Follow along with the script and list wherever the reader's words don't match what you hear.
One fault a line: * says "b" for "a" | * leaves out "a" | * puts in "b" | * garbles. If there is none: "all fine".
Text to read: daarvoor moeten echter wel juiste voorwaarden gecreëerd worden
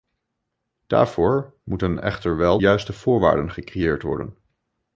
all fine